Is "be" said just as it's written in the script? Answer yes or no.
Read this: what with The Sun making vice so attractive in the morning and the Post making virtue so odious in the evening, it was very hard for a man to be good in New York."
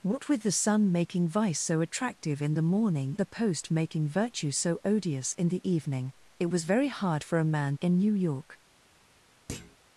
no